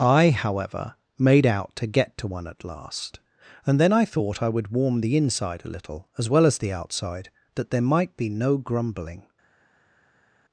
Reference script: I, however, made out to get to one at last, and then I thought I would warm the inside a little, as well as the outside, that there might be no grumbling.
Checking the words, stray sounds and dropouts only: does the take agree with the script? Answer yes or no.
yes